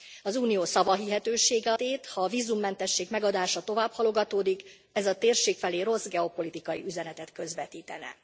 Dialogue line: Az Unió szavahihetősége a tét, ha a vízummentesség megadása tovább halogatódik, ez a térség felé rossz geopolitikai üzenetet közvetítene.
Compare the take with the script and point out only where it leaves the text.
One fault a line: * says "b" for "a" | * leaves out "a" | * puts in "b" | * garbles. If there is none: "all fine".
* leaves out "a"